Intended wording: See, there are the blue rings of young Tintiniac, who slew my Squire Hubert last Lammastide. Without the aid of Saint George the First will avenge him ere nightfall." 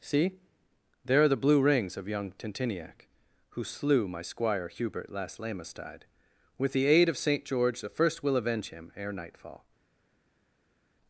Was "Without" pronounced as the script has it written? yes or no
no